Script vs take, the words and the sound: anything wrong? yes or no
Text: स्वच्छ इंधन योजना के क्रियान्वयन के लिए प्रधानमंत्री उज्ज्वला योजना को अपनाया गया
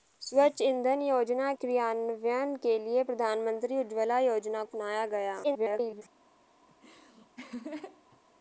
yes